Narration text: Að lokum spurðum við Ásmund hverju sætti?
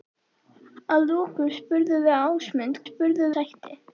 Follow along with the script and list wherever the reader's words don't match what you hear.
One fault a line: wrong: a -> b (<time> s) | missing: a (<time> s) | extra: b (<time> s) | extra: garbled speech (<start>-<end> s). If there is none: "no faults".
wrong: hverju -> spurðum (2.9 s)